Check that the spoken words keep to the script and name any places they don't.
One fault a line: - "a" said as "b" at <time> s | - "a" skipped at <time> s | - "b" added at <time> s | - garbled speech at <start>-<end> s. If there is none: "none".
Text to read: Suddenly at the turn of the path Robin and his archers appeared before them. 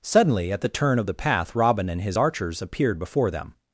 none